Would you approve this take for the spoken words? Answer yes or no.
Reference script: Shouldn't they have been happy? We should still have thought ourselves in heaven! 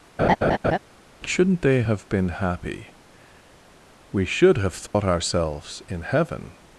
no